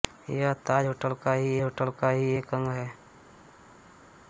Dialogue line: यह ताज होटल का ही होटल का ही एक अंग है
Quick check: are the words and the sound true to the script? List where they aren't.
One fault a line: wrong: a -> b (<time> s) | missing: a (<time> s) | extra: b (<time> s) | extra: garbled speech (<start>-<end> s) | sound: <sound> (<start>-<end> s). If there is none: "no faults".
no faults